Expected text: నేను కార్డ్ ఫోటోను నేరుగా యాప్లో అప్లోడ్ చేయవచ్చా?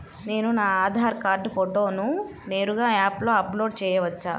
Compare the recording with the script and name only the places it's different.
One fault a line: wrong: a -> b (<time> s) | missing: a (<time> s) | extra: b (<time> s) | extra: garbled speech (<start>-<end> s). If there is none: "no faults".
extra: నా ఆధార్ (0.5 s)